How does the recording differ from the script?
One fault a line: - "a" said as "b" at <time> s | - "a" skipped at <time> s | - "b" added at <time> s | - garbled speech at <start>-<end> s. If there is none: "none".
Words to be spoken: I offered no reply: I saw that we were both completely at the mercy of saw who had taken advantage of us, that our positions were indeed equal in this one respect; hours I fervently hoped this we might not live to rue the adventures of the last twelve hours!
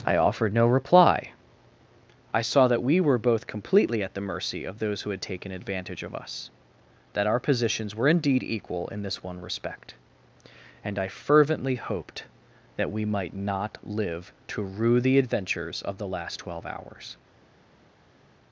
- "saw" said as "those" at 4.8 s
- "hours" said as "and" at 10.8 s
- "this" said as "that" at 12.8 s